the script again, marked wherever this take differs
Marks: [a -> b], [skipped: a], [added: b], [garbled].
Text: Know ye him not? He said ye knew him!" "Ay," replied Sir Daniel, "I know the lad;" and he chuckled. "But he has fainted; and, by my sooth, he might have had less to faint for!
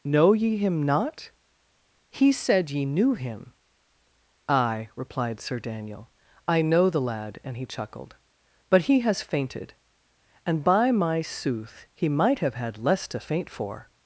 Know ye him not? He said ye knew him!" "Ay," replied Sir Daniel, "I know the lad;" and he chuckled. "But he has fainted; and, by my sooth, he might have had less to faint for!